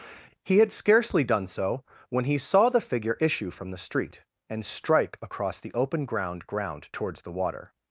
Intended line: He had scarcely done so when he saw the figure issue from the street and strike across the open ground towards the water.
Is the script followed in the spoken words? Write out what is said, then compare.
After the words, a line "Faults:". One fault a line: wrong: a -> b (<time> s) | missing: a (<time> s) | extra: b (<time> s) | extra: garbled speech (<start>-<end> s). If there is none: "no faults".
He had scarcely done so when he saw the figure issue from the street and strike across the open ground ground towards the water.
Faults:
extra: ground (6.5 s)